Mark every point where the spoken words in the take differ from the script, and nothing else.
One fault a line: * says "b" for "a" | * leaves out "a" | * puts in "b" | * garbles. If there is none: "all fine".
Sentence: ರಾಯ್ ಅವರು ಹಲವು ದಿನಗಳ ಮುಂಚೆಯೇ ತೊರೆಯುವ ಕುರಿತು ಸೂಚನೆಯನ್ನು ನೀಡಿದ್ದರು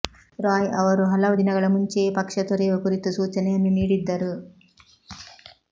* puts in "ಪಕ್ಷ"